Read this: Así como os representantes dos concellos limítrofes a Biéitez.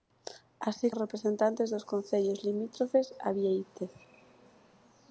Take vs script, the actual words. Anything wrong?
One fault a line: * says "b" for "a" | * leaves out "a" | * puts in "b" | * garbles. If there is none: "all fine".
* leaves out "como"